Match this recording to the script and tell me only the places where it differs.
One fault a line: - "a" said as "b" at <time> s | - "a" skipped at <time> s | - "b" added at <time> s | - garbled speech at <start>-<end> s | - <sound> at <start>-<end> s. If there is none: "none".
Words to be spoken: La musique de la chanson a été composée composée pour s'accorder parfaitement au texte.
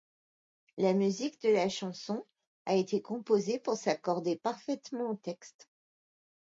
- "composée" skipped at 3.6 s